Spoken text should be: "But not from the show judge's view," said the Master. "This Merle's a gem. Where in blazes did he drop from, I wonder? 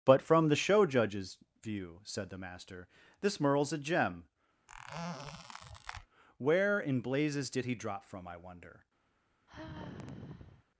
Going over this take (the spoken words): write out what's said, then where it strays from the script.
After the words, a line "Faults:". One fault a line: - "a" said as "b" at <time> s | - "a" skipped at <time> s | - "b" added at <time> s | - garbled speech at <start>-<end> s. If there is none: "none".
"But from the show judge's view," said the Master. "This Merle's a gem. Where in blazes did he drop from, I wonder?
Faults:
- "not" skipped at 0.2 s